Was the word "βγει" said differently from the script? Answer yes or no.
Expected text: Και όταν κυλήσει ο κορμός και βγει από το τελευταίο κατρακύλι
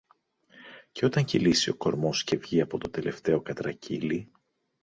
no